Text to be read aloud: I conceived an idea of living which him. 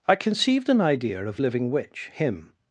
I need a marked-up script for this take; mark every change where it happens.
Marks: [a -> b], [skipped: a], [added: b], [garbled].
I conceived an idea of living which him.